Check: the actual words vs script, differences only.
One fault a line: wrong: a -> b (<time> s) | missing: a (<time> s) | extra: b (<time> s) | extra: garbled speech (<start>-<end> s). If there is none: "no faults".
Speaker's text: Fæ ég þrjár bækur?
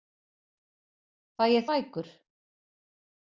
missing: þrjár (1.7 s)